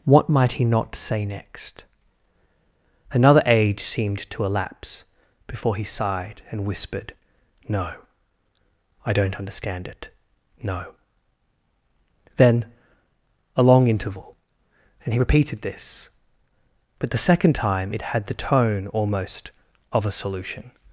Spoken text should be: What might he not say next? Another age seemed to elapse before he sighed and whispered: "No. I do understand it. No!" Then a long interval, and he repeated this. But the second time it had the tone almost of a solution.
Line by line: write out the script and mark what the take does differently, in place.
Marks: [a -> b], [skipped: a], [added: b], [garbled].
What might he not say next? Another age seemed to elapse before he sighed and whispered: "No. I [do -> don't] understand it. No!" Then a long interval, and he repeated this. But the second time it had the tone almost of a solution.